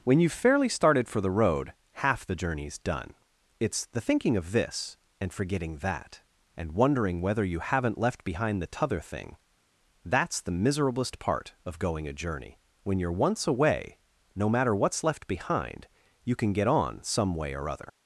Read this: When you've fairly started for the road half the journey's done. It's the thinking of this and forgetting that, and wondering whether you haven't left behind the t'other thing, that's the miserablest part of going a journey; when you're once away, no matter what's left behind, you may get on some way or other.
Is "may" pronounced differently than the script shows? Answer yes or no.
yes